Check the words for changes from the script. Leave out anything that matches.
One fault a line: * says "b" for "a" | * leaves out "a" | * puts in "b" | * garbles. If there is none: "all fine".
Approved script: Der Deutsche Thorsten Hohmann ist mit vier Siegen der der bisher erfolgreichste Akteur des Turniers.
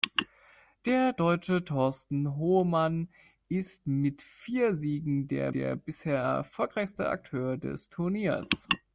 all fine